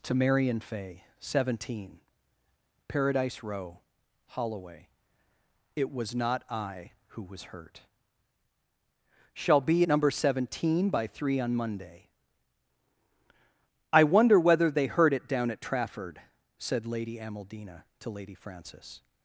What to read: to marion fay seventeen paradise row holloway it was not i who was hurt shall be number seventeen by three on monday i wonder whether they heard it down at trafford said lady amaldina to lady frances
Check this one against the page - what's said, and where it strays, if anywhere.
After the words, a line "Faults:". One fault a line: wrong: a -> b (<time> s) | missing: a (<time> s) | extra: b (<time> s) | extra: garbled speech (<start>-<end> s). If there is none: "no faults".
to marion fay seventeen paradise row holloway it was not i who was hurt shall be number seventeen by three on monday i wonder whether they heard it down at trafford said lady amaldina to lady frances
Faults:
no faults